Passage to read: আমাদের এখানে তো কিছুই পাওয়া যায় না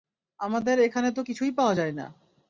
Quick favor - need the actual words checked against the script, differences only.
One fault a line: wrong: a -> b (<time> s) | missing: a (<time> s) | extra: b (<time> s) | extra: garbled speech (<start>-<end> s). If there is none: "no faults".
no faults